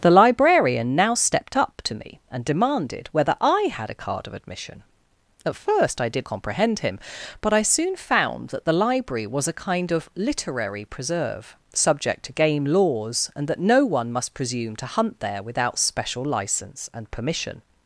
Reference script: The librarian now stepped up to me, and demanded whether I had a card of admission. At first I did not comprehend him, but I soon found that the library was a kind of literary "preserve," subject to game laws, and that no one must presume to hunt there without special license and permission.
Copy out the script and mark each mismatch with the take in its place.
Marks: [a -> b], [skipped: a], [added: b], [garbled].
The librarian now stepped up to me, and demanded whether I had a card of admission. At first I did [skipped: not] comprehend him, but I soon found that the library was a kind of literary "preserve," subject to game laws, and that no one must presume to hunt there without special license and permission.